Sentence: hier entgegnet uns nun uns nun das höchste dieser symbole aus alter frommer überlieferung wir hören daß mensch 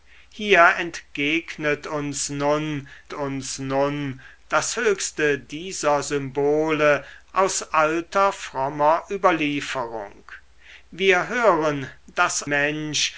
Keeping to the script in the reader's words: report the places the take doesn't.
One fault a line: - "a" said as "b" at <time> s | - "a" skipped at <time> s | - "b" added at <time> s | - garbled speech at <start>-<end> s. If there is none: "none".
none